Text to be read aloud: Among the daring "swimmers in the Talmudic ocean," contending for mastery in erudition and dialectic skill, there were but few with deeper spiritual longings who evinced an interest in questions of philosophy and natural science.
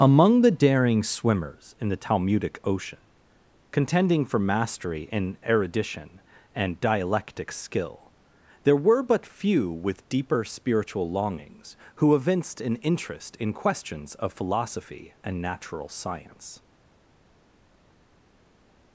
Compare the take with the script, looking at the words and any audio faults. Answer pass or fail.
pass